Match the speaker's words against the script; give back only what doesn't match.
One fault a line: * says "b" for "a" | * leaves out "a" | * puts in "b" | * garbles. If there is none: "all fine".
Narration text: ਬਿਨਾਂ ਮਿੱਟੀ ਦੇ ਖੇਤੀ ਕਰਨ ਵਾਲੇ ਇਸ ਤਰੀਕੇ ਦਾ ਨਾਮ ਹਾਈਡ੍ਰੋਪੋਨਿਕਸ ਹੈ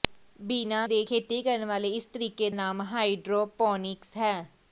* leaves out "ਮਿੱਟੀ"
* leaves out "ਦਾ"